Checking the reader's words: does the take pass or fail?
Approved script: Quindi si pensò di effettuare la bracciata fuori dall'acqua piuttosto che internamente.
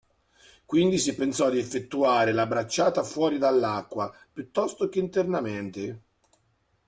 pass